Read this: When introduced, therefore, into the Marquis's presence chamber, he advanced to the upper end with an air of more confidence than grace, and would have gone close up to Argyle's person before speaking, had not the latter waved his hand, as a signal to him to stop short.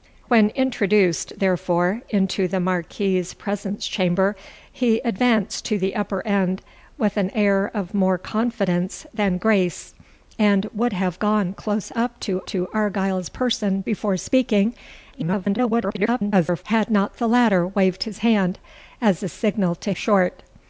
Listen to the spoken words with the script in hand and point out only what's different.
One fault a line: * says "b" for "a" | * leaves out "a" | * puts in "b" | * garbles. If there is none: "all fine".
* puts in "to"
* garbles
* leaves out "him to stop"